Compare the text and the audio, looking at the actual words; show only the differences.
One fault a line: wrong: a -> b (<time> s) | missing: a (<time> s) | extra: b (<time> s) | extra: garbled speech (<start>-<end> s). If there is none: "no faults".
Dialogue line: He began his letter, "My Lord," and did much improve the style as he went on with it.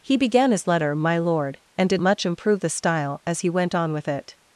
no faults